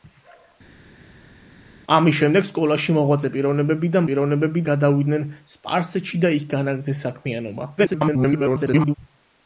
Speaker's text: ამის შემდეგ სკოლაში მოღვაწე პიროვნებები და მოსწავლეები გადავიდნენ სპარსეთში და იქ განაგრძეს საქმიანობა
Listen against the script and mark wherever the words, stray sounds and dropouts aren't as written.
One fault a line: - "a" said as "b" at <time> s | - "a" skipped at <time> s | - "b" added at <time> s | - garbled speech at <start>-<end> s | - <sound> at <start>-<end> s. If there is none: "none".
- "მოსწავლეები" said as "პიროვნებები" at 4.1 s
- garbled speech at 7.8-8.9 s